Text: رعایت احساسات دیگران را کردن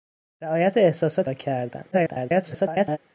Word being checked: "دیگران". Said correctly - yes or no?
no